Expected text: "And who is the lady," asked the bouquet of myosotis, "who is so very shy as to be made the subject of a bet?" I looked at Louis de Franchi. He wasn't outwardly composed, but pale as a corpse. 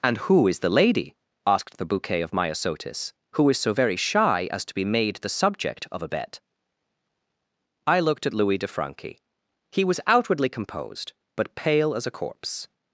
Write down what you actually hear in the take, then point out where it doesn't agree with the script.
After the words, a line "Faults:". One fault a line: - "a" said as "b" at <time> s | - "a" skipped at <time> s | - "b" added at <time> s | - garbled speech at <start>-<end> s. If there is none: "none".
"And who is the lady," asked the bouquet of myosotis, "who is so very shy as to be made the subject of a bet?" I looked at Louis de Franchi. He was outwardly composed, but pale as a corpse.
Faults:
- "wasn't" said as "was" at 9.8 s